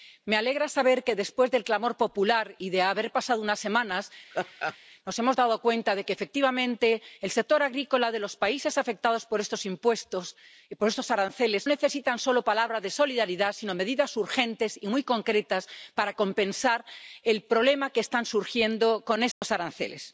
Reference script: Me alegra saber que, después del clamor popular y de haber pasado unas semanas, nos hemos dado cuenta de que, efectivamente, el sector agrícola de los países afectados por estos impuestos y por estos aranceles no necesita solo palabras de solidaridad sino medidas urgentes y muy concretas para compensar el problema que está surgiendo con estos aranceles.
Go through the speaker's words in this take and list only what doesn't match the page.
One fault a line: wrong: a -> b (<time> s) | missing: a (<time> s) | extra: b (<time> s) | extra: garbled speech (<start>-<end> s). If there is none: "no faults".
missing: no (11.7 s)